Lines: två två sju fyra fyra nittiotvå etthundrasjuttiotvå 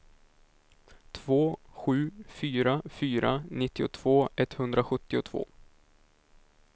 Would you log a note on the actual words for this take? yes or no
yes